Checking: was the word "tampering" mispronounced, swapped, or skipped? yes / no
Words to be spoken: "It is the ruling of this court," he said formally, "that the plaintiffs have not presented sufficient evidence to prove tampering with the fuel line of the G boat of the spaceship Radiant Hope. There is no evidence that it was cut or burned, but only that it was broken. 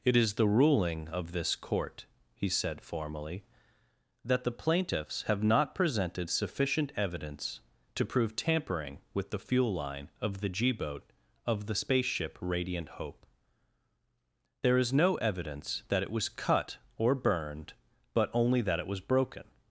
no